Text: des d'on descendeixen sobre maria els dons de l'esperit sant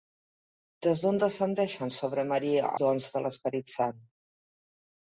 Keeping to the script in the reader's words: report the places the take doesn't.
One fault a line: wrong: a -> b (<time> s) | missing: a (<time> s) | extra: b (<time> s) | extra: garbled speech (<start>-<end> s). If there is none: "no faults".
missing: els (2.7 s)